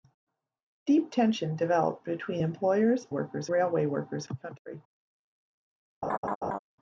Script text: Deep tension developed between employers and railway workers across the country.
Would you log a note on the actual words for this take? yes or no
yes